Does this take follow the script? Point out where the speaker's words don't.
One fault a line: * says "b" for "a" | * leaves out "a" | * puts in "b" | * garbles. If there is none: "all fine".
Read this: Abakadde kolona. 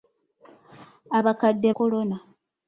all fine